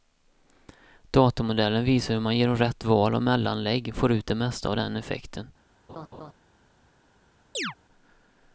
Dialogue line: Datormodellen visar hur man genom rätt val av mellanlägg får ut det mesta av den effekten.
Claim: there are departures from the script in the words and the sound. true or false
true